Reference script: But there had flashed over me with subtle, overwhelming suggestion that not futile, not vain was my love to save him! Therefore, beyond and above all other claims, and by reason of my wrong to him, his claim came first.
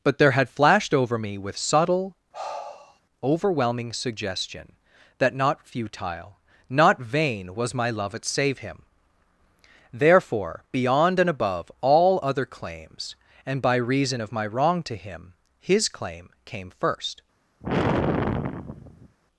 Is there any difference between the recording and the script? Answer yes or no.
yes